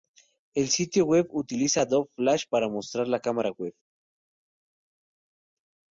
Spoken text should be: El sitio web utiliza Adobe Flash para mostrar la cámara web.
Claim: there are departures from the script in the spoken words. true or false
false